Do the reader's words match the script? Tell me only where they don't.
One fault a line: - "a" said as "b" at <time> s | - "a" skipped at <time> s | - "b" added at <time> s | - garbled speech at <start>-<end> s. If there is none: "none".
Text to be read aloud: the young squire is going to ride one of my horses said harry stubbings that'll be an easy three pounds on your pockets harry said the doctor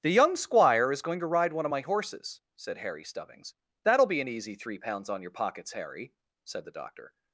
none